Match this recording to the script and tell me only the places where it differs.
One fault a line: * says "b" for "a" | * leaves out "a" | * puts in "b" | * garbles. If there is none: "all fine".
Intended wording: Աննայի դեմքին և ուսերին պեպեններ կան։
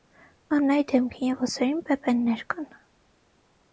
all fine